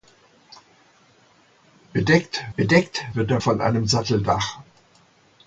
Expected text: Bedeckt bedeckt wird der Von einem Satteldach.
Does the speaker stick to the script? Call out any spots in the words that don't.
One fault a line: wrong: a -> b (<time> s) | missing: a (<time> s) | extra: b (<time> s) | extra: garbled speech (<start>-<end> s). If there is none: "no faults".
no faults